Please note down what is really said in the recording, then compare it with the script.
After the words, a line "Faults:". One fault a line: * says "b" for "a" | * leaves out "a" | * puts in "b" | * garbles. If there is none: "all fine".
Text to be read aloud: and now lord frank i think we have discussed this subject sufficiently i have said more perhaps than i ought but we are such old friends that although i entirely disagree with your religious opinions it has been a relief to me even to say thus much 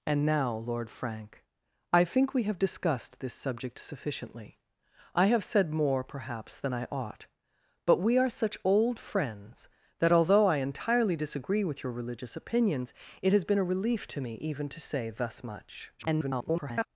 and now lord frank i think we have discussed this subject sufficiently i have said more perhaps than i ought but we are such old friends that although i entirely disagree with your religious opinions it has been a relief to me even to say thus much [garbled]
Faults:
* garbles